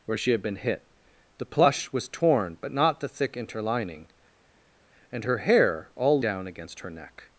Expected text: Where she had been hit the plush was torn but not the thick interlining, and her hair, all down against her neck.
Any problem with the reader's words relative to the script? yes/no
no